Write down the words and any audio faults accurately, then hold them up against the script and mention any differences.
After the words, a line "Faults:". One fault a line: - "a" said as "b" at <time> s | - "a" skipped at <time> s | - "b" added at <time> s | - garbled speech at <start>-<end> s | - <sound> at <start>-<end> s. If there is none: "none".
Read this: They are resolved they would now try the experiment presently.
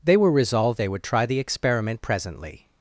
They were resolved they would try the experiment presently.
Faults:
- "are" said as "were" at 0.2 s
- "now" skipped at 1.0 s